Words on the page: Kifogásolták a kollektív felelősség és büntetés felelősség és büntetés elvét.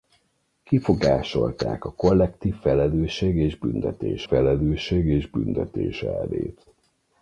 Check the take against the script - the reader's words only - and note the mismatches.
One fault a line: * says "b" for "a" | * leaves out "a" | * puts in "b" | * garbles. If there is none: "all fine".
all fine